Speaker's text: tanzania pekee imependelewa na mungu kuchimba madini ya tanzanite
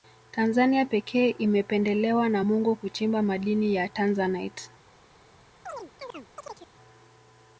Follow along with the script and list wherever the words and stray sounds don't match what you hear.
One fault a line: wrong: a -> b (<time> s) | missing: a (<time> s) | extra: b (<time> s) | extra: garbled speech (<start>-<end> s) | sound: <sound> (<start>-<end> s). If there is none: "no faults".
sound: chirp (5.7-6.7 s)